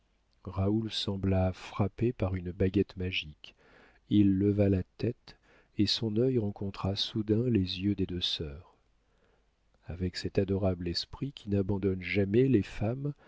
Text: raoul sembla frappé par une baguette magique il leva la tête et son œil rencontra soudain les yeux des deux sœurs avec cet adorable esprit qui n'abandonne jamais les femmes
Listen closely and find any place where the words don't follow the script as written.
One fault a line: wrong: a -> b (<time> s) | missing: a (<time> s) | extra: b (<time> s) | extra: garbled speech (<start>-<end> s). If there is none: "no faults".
no faults